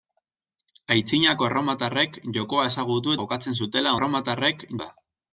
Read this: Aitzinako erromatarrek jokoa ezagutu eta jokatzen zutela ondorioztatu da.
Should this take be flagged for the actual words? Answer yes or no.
yes